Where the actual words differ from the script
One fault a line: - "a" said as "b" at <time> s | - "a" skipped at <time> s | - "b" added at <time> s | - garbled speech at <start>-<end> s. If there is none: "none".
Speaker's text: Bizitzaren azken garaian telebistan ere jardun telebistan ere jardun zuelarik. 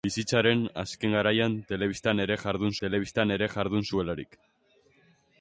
none